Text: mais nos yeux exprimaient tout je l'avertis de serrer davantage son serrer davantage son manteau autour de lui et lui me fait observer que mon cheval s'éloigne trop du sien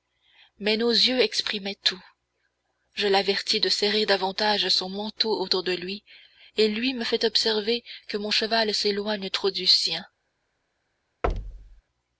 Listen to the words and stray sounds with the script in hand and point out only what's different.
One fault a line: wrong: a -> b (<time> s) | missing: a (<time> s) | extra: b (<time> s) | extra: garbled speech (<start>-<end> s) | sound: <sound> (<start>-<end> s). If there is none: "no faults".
missing: serrer davantage son (4.9 s)
sound: thud (11.2-11.8 s)